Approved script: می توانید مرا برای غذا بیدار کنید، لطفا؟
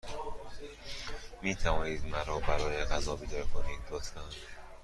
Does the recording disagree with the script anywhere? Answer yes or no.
no